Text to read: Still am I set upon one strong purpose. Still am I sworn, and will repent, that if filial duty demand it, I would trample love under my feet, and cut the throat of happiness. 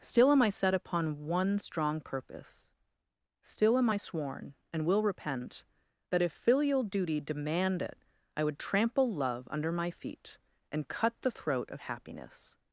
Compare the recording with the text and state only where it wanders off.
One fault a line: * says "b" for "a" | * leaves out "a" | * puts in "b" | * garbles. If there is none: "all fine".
all fine